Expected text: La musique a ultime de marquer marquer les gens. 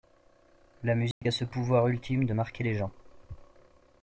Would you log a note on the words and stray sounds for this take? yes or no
yes